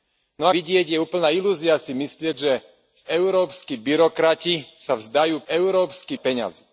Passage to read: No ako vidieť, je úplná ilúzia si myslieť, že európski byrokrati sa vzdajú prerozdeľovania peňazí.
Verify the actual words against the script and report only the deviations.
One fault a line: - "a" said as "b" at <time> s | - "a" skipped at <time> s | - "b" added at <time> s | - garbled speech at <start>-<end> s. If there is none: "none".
- "ako" skipped at 0.5 s
- "prerozdeľovania" said as "európski" at 5.5 s